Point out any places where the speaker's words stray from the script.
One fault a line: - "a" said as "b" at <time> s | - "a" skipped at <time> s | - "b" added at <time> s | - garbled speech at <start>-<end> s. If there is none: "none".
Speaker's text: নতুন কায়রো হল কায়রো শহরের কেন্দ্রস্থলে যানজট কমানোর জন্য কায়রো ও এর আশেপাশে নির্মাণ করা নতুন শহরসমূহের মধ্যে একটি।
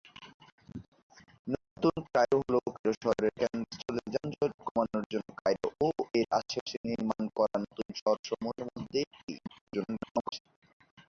- garbled speech at 9.4-10.4 s